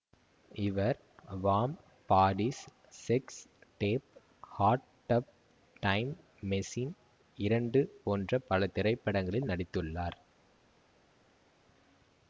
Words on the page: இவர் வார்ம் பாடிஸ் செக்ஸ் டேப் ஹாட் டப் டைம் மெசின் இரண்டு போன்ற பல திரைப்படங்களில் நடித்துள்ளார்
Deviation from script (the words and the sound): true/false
false